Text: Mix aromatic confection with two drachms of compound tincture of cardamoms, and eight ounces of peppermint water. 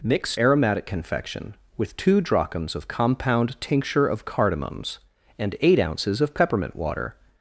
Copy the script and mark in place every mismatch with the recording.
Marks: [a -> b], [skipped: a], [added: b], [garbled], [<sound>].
Mix aromatic confection with two drachms of compound tincture of cardamoms, and eight ounces of peppermint water.